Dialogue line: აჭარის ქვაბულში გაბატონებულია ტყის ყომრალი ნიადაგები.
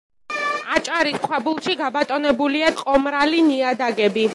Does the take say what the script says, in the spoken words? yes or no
no